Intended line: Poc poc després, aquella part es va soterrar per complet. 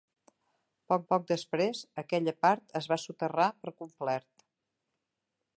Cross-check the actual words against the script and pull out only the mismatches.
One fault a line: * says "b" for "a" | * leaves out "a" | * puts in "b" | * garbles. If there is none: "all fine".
all fine